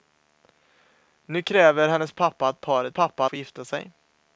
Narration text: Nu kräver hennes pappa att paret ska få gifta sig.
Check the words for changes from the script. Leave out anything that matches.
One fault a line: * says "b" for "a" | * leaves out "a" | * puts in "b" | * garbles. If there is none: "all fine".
* says "pappa" for "ska"